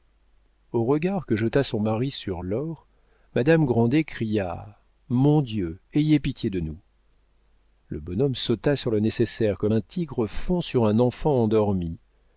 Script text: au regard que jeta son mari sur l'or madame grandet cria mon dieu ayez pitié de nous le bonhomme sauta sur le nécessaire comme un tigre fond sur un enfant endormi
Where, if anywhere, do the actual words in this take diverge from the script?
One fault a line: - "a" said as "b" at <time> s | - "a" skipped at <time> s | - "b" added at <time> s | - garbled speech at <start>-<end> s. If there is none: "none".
none